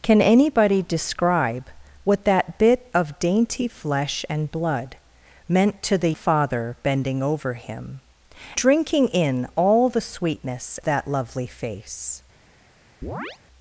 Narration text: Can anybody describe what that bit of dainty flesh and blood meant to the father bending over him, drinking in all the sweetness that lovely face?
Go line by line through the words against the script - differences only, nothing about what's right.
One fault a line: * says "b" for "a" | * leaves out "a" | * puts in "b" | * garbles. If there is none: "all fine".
all fine